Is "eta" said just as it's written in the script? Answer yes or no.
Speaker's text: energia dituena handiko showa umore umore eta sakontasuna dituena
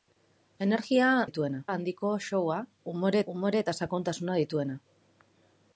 yes